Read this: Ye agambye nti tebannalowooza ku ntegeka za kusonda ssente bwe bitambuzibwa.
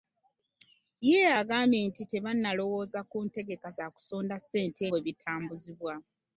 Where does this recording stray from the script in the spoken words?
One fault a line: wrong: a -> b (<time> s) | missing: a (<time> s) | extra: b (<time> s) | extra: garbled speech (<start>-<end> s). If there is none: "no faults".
no faults